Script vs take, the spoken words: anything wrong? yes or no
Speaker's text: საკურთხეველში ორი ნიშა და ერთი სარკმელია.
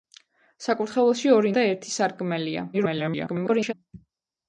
yes